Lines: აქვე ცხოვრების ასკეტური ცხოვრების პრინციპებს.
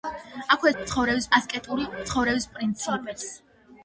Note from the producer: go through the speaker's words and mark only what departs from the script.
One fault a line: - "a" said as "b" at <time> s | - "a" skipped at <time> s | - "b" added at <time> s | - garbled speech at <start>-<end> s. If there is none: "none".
none